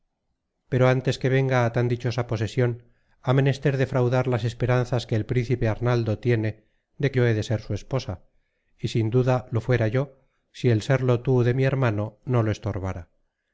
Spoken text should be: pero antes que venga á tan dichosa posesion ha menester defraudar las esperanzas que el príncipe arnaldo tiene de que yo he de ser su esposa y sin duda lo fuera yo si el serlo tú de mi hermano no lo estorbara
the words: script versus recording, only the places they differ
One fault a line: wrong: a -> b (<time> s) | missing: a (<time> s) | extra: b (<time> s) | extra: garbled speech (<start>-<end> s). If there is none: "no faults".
missing: que (7.1 s)